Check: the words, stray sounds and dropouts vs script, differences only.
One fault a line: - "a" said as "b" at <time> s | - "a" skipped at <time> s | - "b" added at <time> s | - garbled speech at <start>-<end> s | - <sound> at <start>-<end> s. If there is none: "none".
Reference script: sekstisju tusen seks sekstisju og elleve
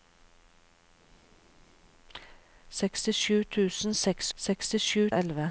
none